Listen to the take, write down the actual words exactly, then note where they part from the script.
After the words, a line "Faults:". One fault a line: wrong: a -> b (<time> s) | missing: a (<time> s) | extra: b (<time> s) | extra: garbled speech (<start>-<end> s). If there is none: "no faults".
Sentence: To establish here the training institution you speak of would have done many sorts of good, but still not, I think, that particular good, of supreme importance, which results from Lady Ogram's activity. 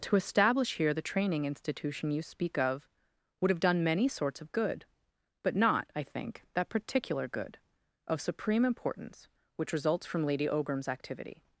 To establish here the training institution you speak of would have done many sorts of good, but not, I think, that particular good, of supreme importance, which results from Lady Ogram's activity.
Faults:
missing: still (5.5 s)